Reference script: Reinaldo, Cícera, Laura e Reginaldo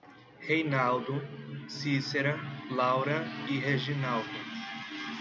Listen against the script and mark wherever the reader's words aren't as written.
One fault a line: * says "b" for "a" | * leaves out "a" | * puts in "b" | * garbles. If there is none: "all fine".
all fine